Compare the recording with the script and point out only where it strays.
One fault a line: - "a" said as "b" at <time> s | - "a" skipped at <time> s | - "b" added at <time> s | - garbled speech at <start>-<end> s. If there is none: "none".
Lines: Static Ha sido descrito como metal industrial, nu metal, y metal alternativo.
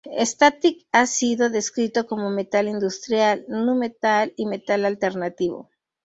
none